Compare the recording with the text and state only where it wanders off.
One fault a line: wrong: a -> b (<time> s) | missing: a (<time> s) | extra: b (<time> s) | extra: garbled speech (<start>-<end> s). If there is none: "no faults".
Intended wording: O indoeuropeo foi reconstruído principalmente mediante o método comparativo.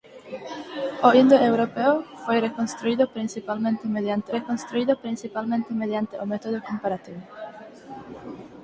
extra: reconstruído principalmente mediante (4.4 s)